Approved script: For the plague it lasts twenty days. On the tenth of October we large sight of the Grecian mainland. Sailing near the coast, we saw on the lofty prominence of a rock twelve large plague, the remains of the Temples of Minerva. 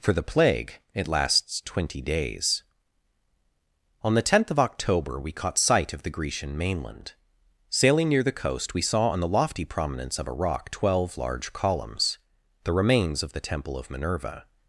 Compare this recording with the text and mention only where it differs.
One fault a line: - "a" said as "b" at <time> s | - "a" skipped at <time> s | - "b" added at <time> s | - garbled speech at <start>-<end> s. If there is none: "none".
- "large" said as "caught" at 5.3 s
- "plague" said as "columns" at 11.5 s
- "Temples" said as "Temple" at 13.4 s